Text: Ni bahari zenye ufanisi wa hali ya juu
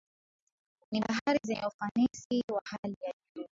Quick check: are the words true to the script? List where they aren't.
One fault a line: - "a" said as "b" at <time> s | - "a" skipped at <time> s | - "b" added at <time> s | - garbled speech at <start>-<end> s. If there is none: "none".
none